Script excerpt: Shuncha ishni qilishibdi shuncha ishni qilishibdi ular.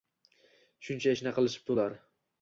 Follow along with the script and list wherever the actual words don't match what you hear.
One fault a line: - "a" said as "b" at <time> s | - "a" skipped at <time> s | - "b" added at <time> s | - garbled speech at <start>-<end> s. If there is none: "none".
- "shuncha ishni qilishibdi" skipped at 1.7 s